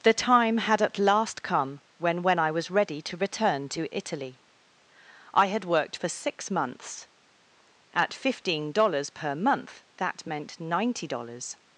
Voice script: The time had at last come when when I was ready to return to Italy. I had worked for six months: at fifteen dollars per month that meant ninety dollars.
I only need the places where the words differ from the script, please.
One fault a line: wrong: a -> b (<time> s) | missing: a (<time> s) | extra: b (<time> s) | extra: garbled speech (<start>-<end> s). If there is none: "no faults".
no faults